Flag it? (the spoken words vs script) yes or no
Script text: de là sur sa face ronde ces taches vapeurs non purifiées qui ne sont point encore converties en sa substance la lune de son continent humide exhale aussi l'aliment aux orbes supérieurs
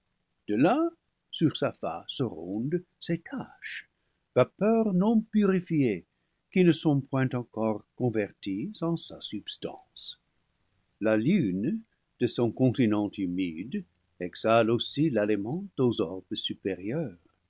no